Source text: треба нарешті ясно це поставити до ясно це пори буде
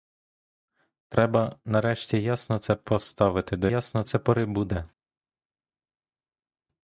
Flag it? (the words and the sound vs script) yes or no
no